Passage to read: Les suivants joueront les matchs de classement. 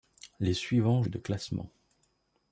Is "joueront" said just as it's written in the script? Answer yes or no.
no